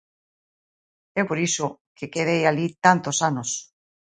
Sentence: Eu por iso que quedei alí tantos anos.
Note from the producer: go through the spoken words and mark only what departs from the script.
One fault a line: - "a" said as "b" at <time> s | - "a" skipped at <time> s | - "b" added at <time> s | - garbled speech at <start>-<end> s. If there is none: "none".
none